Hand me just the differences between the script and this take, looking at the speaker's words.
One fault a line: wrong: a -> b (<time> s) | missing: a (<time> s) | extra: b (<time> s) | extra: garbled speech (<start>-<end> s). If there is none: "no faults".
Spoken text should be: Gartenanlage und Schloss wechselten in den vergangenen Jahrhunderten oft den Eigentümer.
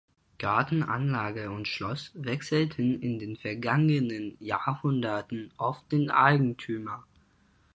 no faults